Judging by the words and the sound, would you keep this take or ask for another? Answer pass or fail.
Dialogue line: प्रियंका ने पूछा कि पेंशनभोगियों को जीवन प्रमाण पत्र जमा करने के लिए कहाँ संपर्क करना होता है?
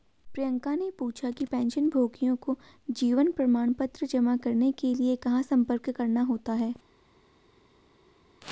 pass